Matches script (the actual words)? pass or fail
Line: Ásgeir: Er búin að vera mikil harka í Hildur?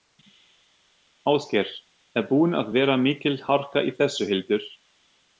fail